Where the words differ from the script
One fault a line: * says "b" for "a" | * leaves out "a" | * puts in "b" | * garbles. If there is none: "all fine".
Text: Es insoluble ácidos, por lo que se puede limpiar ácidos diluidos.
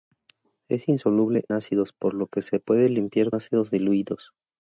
all fine